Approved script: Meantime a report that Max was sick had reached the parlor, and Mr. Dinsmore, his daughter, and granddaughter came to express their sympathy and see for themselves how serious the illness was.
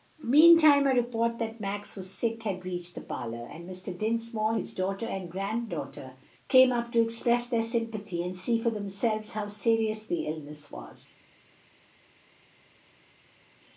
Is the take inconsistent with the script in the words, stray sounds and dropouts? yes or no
yes